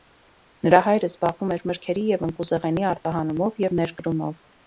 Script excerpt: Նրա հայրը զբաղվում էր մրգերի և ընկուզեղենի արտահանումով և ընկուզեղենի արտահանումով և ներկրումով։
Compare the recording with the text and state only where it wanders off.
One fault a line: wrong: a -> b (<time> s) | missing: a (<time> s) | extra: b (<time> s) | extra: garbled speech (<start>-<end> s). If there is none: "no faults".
missing: ընկուզեղենի արտահանումով և (3.8 s)